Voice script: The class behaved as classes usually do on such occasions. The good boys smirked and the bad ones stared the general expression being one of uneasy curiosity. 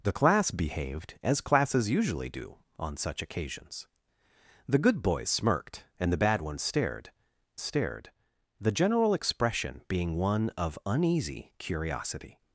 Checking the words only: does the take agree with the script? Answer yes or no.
no